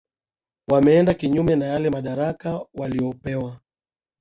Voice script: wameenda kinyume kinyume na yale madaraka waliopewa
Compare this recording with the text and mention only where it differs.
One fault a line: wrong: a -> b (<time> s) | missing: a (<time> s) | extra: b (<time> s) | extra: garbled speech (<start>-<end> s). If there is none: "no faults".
missing: kinyume (1.6 s)